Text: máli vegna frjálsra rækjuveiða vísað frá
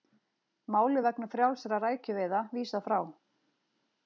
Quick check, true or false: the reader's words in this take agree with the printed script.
true